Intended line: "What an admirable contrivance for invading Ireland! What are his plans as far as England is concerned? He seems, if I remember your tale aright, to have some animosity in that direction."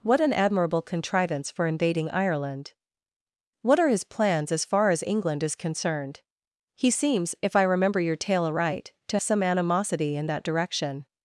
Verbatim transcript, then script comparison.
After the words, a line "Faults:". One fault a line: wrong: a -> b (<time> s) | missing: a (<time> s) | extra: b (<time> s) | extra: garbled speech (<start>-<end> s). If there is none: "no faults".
"What an admirable contrivance for invading Ireland! What are his plans as far as England is concerned? He seems, if I remember your tale aright, to some animosity in that direction."
Faults:
missing: have (9.2 s)